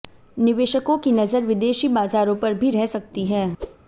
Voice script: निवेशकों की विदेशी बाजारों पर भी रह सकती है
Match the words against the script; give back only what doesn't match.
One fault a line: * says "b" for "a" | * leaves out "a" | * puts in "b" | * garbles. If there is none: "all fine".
* puts in "नजर"